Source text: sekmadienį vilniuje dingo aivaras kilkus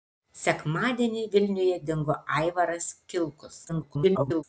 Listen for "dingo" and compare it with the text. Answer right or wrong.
right